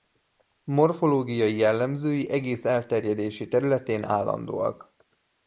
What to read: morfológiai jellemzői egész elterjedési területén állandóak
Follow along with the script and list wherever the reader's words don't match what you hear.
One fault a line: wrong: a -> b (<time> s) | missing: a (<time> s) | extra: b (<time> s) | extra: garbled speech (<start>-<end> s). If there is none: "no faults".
no faults